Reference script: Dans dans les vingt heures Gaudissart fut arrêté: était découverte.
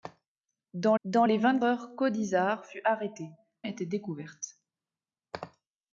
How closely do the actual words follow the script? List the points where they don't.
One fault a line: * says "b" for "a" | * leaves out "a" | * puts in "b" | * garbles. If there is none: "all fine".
all fine